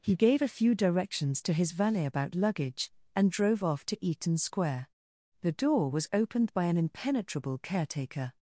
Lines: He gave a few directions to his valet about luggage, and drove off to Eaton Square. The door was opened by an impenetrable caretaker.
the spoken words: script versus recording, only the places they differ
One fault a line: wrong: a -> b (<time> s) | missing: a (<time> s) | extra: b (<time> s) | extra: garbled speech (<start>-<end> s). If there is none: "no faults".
no faults